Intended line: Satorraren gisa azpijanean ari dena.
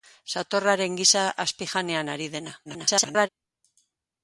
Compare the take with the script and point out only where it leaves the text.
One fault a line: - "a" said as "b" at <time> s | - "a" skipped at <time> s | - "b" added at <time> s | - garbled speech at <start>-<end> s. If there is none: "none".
- garbled speech at 2.6-3.3 s